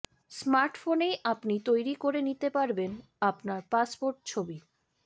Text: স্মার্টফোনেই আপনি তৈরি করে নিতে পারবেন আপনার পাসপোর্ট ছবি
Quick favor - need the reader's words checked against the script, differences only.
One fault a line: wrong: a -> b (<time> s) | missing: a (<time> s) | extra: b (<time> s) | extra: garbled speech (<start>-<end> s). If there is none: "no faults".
no faults